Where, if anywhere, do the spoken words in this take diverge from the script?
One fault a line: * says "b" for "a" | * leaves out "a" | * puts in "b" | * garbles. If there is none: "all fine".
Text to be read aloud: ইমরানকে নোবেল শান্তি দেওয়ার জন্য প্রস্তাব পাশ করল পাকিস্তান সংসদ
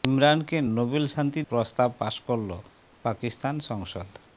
* leaves out "দেওয়ার জন্য"